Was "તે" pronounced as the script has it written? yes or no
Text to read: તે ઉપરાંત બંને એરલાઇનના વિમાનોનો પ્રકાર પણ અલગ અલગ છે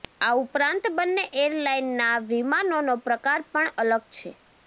no